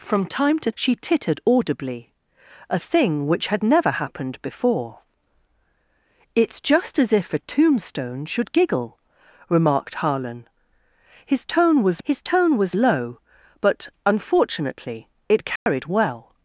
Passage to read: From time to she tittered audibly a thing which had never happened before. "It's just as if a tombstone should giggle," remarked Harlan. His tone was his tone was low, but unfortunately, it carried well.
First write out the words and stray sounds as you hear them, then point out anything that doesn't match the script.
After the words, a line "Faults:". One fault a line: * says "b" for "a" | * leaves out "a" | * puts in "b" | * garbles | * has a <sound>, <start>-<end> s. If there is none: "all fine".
From time to she tittered audibly a thing which had never happened before. "It's just as if a tombstone should giggle," remarked Harlan. His tone was his tone was low, but unfortunately, it carried well.
Faults:
* has a dropout, 15.6-15.7 s